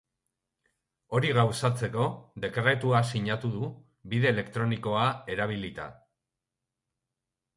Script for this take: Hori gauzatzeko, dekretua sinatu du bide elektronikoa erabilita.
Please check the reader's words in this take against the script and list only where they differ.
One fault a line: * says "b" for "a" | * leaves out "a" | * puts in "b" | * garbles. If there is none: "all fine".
all fine